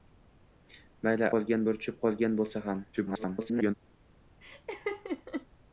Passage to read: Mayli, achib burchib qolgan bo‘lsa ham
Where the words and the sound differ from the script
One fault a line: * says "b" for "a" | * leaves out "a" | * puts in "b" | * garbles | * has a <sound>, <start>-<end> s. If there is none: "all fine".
* says "qolgan" for "achib"
* garbles
* has a laugh, 4.4-5.5 s